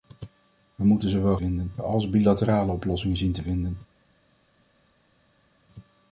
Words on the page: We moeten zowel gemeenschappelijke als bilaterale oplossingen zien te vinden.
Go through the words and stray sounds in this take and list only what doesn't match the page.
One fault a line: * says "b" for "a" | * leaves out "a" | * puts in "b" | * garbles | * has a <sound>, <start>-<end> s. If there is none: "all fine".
* says "vinden" for "gemeenschappelijke"